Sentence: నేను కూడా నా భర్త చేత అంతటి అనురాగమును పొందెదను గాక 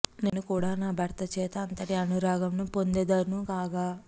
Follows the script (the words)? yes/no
yes